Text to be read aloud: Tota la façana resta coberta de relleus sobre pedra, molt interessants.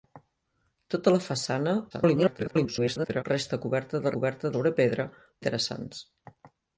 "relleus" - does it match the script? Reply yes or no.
no